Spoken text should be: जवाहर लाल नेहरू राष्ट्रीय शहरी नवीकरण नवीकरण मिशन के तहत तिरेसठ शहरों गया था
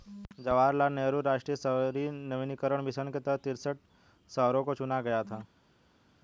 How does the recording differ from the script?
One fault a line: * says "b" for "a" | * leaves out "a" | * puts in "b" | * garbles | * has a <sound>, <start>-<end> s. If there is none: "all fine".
* leaves out "नवीकरण"
* puts in "को चुना"